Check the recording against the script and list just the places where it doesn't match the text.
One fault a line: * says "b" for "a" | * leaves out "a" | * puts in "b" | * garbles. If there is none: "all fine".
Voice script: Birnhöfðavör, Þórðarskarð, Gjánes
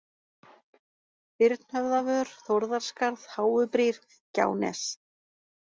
* puts in "Háubrýr"